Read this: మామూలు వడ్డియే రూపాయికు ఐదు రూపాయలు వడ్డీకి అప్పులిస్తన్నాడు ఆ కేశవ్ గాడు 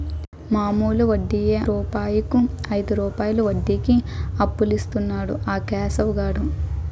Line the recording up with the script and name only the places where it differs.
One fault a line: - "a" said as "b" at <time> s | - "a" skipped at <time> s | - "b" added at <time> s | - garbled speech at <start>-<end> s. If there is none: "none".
none